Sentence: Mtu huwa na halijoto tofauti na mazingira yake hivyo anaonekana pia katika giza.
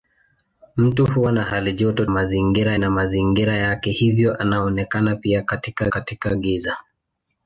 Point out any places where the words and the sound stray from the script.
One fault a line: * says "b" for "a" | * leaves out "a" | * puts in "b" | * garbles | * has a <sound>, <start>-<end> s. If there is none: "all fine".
* says "mazingira" for "tofauti"
* puts in "katika"